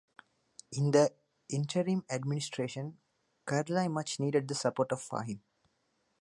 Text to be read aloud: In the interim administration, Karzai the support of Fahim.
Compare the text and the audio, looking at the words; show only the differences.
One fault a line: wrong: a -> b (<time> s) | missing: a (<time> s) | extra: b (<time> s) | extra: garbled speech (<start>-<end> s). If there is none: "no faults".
extra: much needed (3.9 s)